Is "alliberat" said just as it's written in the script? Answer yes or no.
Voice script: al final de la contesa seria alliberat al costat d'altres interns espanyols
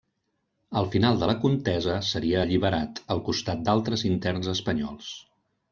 yes